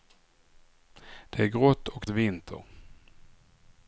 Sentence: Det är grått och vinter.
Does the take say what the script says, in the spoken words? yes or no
yes